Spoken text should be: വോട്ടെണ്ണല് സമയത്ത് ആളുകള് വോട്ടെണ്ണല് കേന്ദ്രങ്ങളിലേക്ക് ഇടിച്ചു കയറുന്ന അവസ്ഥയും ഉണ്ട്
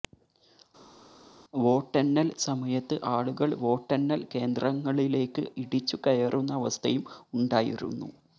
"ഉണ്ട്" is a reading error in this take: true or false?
true